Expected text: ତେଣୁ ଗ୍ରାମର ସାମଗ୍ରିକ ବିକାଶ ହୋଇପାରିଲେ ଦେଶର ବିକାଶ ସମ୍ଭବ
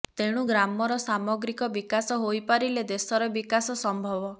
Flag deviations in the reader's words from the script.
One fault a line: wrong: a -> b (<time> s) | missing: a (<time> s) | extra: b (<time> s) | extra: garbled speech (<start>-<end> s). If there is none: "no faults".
no faults